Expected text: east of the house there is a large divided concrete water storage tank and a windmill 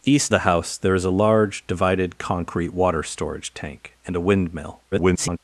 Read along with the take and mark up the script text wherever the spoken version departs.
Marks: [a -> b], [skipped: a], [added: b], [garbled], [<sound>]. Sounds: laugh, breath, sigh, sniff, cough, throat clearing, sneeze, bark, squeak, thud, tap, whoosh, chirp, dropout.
east [skipped: of] the house there is a large divided concrete water storage tank and a windmill [garbled]